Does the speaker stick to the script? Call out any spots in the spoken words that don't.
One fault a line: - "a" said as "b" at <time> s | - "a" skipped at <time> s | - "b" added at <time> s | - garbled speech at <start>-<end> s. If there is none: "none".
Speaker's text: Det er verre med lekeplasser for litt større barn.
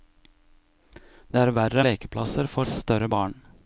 - "med" skipped at 1.9 s
- "litt" skipped at 2.7 s